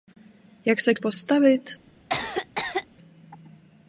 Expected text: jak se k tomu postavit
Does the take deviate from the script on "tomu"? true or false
true